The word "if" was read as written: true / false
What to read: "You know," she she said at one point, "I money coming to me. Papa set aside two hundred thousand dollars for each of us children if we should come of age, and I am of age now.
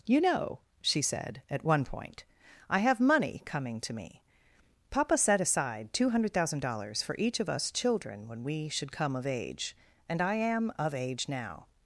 false